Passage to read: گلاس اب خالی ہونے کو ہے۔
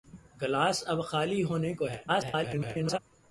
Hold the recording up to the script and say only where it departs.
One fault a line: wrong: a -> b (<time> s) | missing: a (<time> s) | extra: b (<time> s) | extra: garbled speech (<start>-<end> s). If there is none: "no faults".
extra: garbled speech (2.1-3.0 s)